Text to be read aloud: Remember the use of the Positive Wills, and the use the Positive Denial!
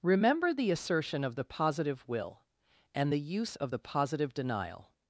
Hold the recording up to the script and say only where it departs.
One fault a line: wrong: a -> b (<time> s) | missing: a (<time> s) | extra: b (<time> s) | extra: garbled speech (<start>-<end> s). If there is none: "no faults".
wrong: use -> assertion (0.7 s)
wrong: Wills -> Will (2.1 s)
extra: of (3.6 s)